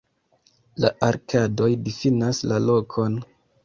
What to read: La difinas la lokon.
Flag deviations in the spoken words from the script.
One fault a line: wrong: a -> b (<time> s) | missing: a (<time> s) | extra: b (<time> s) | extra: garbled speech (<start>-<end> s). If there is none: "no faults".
extra: arkadoj (1.1 s)